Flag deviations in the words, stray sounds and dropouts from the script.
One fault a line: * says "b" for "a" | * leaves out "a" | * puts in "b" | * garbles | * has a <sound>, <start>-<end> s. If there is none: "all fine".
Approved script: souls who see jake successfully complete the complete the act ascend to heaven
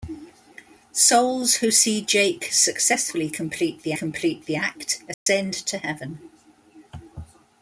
* has a dropout, 5.1-5.3 s